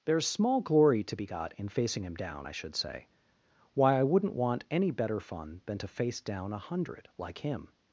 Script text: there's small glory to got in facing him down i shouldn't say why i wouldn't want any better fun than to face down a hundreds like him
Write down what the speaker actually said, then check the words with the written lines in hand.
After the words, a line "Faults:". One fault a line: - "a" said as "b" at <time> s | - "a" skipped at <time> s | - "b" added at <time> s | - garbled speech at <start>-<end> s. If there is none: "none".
there's small glory to be got in facing him down i should say why i wouldn't want any better fun than to face down a hundred like him
Faults:
- "be" added at 1.1 s
- "shouldn't" said as "should" at 2.5 s
- "hundreds" said as "hundred" at 6.6 s